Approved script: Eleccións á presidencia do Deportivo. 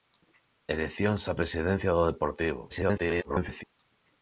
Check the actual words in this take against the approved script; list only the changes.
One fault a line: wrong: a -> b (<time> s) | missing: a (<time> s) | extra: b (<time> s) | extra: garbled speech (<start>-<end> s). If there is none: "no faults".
extra: garbled speech (2.7-3.6 s)